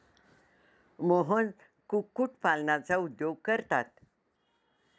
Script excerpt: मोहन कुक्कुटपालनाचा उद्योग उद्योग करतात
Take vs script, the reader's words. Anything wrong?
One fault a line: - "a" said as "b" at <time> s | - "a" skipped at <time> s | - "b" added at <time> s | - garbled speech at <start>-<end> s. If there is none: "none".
- "उद्योग" skipped at 3.4 s